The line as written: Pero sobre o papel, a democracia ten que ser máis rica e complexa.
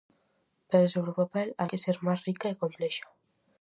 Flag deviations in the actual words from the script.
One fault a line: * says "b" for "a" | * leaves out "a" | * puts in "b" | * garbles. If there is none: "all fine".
* leaves out "democracia ten"